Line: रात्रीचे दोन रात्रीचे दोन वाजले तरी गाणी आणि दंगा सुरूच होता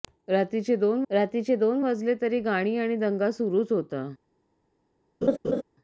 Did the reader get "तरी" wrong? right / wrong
right